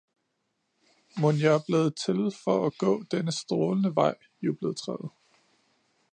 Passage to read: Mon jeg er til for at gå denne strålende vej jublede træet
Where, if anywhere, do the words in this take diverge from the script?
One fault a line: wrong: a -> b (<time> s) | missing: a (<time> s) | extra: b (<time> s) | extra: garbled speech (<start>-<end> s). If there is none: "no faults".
extra: blevet (1.7 s)